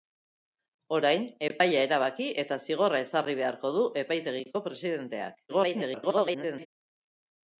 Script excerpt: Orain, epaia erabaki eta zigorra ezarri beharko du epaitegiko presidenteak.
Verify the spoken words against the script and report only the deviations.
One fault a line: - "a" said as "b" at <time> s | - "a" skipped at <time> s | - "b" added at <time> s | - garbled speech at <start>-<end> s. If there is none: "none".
- garbled speech at 5.5-6.7 s